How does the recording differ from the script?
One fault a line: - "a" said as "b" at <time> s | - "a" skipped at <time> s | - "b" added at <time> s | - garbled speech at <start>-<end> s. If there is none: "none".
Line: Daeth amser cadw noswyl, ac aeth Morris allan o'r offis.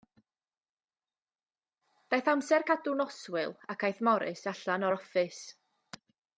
none